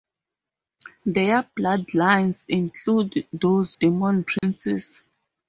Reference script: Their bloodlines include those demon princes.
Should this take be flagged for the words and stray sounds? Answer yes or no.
yes